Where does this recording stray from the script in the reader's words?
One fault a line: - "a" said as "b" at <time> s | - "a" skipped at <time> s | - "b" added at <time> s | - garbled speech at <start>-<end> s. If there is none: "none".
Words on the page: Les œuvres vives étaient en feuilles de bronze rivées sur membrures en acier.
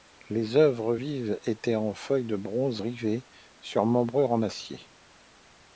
none